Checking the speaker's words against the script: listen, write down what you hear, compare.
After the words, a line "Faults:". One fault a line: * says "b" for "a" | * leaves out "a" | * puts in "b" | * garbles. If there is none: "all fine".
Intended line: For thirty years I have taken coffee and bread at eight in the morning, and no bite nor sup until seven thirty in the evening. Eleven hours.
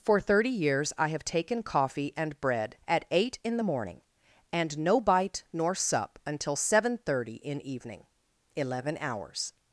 For thirty years I have taken coffee and bread at eight in the morning, and no bite nor sup until seven thirty in evening. Eleven hours.
Faults:
* leaves out "the"